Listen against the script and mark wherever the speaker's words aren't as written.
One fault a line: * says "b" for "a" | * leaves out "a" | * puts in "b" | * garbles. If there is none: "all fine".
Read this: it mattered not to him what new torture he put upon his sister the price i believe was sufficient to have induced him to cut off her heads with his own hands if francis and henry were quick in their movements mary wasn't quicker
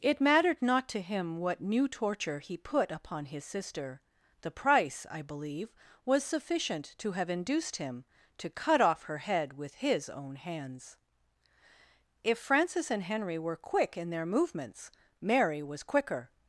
* says "head" for "heads"
* says "was" for "wasn't"